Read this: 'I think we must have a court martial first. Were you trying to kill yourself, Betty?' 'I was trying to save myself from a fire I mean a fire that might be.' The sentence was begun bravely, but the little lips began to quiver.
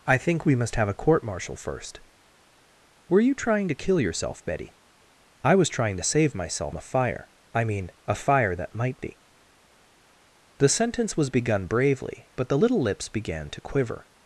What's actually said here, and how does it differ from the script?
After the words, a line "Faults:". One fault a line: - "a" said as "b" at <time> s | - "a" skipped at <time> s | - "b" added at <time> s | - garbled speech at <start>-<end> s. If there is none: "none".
'I think we must have a court martial first. Were you trying to kill yourself, Betty?' 'I was trying to save myself a fire I mean a fire that might be.' The sentence was begun bravely, but the little lips began to quiver.
Faults:
- "from" skipped at 6.8 s